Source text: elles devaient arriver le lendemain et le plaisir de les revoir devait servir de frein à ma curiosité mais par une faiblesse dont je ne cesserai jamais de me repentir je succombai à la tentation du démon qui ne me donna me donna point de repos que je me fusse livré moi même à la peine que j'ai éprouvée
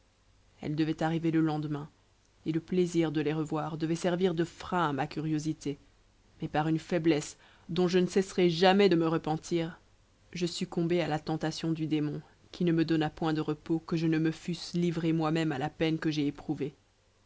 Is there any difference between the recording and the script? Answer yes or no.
yes